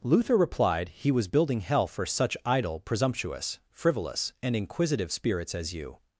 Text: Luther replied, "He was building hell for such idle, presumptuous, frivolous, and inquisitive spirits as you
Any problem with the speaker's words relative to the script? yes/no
no